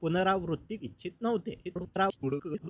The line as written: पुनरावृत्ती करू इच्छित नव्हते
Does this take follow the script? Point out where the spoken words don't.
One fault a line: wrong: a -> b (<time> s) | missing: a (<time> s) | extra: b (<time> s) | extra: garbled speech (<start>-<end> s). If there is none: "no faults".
missing: करू (0.8 s)
extra: garbled speech (1.6-2.7 s)